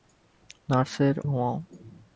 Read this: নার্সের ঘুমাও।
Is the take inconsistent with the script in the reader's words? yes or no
no